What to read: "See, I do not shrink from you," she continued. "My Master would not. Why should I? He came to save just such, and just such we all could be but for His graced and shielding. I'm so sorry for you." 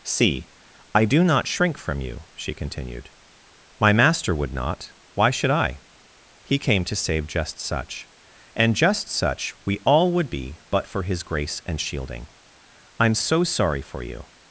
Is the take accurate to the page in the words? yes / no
no